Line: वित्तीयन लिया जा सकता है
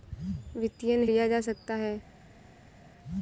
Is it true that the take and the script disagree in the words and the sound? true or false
false